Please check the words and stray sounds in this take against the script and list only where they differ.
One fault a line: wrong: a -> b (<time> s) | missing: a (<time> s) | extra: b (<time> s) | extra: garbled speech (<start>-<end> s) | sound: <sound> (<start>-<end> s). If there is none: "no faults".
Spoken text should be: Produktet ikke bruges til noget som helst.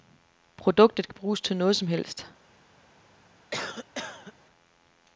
sound: cough (3.5-4.3 s)